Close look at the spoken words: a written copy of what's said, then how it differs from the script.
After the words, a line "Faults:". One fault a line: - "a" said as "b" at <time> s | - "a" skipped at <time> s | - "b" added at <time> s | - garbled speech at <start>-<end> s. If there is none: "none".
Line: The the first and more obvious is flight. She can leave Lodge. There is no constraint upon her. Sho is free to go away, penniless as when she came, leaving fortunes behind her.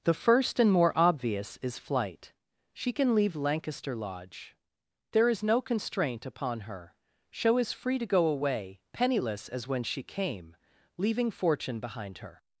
The first and more obvious is flight. She can leave Lancaster Lodge. There is no constraint upon her. Sho is free to go away, penniless as when she came, leaving fortune behind her.
Faults:
- "the" skipped at 0.1 s
- "Lancaster" added at 3.4 s
- "fortunes" said as "fortune" at 11.3 s